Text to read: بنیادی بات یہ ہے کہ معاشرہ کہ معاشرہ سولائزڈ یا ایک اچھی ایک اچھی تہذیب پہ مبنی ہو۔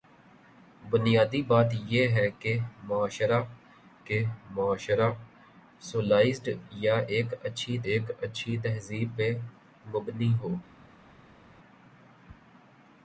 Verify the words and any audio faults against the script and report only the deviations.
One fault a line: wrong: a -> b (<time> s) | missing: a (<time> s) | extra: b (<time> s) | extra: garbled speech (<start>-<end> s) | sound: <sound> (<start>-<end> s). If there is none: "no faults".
no faults